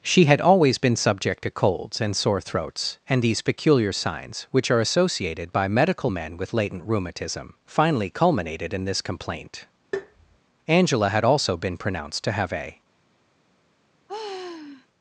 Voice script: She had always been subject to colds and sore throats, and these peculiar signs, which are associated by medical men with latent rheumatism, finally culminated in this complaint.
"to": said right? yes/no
yes